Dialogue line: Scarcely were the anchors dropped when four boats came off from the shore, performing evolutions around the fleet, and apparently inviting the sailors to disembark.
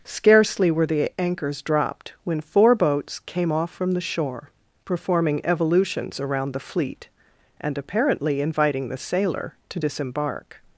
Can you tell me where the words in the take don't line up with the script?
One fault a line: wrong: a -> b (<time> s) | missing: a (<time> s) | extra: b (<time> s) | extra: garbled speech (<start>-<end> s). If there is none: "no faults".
wrong: sailors -> sailor (9.0 s)